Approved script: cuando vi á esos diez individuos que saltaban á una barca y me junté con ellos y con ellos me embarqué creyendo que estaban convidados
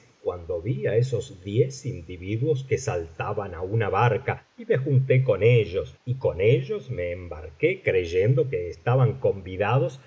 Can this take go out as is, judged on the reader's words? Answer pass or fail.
pass